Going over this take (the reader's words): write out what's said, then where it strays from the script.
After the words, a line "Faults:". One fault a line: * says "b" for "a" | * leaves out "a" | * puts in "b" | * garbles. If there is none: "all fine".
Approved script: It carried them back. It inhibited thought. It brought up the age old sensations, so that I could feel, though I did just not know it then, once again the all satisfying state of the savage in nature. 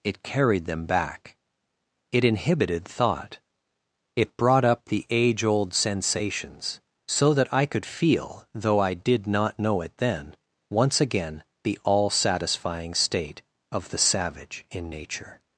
It carried them back. It inhibited thought. It brought up the age old sensations, so that I could feel, though I did not know it then, once again the all satisfying state of the savage in nature.
Faults:
* leaves out "just"